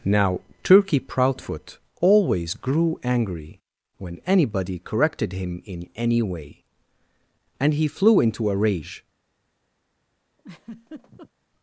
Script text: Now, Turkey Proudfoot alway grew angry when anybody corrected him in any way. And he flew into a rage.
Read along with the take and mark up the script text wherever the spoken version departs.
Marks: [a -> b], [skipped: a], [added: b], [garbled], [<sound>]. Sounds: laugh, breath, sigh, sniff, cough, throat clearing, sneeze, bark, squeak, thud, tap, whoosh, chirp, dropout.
Now, Turkey Proudfoot [alway -> always] grew angry when anybody corrected him in any way. And he flew into a rage. [laugh]